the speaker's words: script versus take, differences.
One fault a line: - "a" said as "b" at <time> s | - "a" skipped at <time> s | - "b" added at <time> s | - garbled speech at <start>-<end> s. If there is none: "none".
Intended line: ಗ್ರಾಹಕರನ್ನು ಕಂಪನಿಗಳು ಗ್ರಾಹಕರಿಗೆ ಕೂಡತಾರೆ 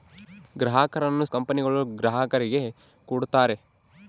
none